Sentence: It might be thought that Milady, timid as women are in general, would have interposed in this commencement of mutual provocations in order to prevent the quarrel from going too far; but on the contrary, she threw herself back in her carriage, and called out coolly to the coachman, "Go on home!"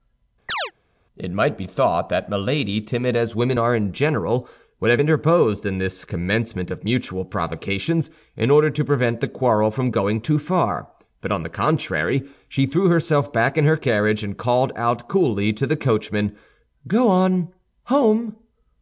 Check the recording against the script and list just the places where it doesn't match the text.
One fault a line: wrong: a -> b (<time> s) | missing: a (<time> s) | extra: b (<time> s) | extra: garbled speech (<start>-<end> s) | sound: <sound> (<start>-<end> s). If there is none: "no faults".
sound: chirp (0.5-0.7 s)